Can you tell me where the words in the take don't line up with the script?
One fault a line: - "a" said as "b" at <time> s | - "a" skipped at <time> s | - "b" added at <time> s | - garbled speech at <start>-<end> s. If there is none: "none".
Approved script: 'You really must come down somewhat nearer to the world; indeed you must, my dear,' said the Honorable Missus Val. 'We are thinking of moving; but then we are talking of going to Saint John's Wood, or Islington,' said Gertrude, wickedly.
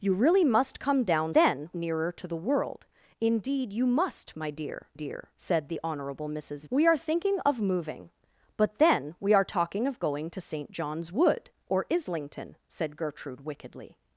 - "somewhat" said as "then" at 1.3 s
- "dear" added at 4.9 s
- "Val" skipped at 6.7 s